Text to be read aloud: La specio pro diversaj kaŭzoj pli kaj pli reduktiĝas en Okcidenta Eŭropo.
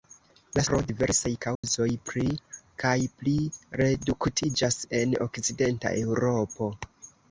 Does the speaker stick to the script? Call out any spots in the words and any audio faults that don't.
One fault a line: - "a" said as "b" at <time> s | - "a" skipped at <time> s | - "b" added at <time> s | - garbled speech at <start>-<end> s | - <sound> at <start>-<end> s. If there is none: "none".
- "specio" skipped at 0.6 s
- dropout at 1.6-1.6 s